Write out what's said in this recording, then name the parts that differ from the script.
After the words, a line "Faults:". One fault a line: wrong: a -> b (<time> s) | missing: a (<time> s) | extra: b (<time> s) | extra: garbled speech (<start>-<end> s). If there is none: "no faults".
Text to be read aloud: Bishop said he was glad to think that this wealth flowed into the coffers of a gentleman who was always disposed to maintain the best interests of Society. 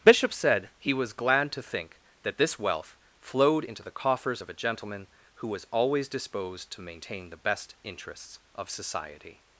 Bishop said he was glad to think that this wealth flowed into the coffers of a gentleman who was always disposed to maintain the best interests of Society.
Faults:
no faults